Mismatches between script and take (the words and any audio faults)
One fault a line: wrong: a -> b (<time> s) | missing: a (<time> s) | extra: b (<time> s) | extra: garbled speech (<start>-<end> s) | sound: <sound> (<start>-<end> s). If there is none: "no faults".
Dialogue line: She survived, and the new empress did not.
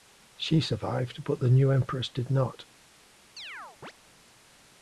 wrong: and -> but (1.2 s)
sound: chirp (3.4-3.9 s)